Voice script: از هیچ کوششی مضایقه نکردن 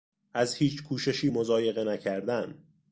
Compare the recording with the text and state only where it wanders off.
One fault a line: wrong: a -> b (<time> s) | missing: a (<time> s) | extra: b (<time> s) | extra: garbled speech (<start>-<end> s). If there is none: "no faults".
no faults